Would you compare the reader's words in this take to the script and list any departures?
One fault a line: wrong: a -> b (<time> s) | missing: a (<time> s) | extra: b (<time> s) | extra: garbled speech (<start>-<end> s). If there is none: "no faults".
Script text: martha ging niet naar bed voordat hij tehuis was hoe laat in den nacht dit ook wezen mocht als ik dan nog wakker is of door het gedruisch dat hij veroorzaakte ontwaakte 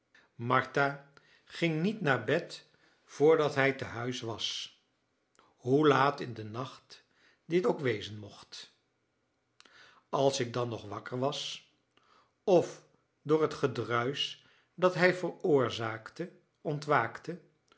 wrong: is -> was (11.2 s)